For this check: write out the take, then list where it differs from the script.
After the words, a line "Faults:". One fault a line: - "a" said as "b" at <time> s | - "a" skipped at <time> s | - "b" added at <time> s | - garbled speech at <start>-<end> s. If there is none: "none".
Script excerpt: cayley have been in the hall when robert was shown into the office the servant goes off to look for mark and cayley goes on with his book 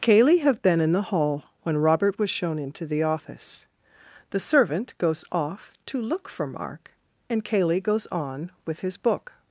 cayley have been in the hall when robert was shown into the office the servant goes off to look for mark and cayley goes on with his book
Faults:
none